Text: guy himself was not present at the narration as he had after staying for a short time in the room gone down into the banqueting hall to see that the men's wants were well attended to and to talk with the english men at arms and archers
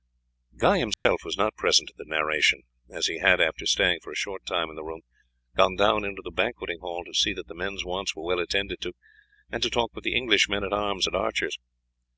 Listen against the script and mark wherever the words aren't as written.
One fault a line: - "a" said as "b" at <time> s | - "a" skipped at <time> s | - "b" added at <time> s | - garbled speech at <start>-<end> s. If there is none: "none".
none